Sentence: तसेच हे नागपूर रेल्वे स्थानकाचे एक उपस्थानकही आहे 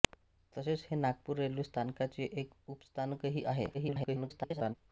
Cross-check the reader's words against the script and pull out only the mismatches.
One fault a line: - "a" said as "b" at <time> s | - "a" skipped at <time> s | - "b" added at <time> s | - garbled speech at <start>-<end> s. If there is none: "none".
- garbled speech at 3.7-4.7 s